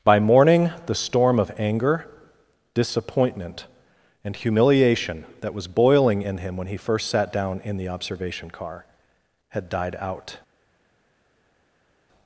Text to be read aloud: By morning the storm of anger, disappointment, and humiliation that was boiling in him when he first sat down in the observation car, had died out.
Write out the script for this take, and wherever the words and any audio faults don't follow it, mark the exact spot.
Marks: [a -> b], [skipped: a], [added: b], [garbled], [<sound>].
By morning the storm of anger, disappointment, and humiliation that was boiling in him when he first sat down in the observation car, had died out.